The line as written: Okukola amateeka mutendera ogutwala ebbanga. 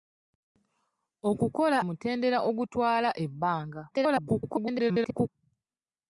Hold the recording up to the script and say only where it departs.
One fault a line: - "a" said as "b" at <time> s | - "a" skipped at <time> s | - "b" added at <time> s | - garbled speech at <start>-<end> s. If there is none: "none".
- "amateeka" skipped at 1.8 s
- garbled speech at 3.9-5.3 s